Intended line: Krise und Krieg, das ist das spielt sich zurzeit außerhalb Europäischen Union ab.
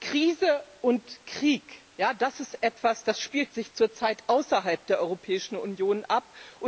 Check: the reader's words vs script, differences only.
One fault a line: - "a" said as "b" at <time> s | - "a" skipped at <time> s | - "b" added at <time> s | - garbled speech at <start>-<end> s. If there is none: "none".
- "etwas" added at 2.6 s
- "der" added at 4.9 s